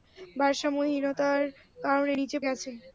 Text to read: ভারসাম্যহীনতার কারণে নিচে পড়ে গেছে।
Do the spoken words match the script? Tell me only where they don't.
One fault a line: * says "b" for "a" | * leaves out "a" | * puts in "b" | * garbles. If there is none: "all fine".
* leaves out "পড়ে"